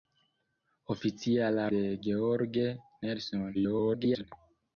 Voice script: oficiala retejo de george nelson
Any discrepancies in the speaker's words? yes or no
yes